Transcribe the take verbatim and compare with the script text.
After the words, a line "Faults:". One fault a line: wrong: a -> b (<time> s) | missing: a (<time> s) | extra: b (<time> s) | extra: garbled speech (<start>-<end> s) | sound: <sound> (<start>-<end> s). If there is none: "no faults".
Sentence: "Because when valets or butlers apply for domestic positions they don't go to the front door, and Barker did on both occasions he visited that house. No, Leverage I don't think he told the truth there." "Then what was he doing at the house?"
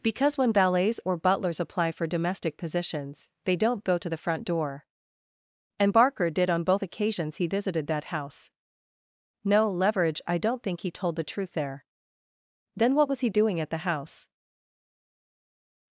"Because when valets or butlers apply for domestic positions they don't go to the front door, and Barker did on both occasions he visited that house. No, Leverage I don't think he told the truth there." "Then what was he doing at the house?"
Faults:
no faults